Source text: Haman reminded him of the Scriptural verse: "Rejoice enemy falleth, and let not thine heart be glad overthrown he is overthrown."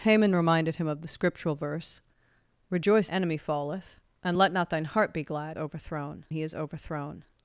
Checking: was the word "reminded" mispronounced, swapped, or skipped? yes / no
no